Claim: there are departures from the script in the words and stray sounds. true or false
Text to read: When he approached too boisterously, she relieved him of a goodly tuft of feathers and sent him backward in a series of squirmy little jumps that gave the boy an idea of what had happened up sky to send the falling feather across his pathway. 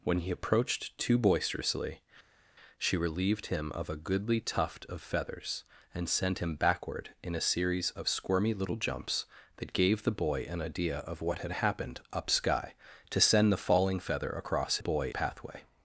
true